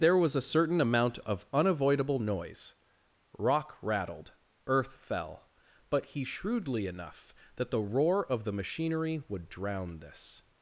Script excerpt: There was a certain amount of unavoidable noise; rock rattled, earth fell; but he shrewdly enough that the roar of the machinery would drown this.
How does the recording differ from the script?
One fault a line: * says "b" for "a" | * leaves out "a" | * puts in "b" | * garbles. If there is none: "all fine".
all fine